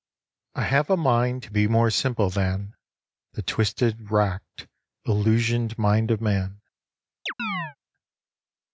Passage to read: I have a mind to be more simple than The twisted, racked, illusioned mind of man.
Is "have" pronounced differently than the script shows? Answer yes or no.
no